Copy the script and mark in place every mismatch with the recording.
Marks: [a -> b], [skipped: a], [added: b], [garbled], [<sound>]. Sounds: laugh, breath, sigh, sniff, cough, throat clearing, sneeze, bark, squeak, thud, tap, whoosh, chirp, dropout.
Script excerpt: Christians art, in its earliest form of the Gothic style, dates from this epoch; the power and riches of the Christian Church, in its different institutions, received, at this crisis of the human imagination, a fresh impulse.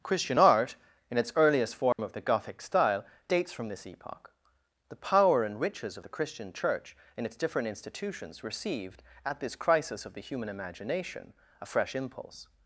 [Christians -> Christian] art, in its earliest form [dropout] of the Gothic style, dates from this epoch; the power and riches of the Christian Church, in its different institutions, received, at this crisis of the human imagination, a fresh impulse.